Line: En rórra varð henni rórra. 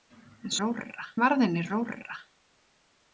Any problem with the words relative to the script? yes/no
no